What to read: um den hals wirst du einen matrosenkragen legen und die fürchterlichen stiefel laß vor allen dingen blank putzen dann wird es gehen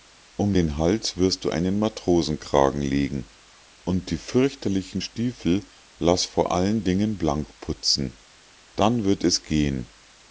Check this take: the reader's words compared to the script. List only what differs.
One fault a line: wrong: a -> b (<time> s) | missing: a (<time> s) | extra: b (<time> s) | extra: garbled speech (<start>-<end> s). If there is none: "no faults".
no faults